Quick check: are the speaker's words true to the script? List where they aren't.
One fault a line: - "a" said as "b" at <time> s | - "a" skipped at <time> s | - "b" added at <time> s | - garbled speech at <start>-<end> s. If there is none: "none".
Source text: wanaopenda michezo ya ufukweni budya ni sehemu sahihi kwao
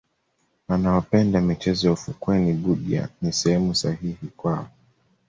none